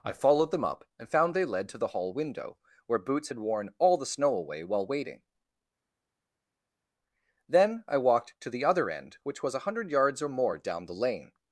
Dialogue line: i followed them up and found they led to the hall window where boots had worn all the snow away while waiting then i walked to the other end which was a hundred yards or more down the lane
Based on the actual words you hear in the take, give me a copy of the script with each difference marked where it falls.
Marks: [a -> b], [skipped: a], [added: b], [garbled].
i followed them up and found they led to the hall window where boots had worn all the snow away while waiting then i walked to the other end which was a hundred yards or more down the lane